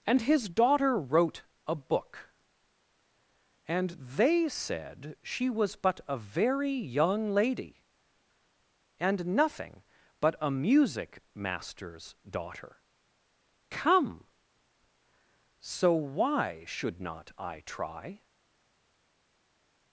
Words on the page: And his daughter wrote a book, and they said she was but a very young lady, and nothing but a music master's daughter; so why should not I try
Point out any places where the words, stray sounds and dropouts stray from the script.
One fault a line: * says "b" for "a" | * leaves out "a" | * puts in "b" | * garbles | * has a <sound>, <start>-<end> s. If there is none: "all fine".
* puts in "come"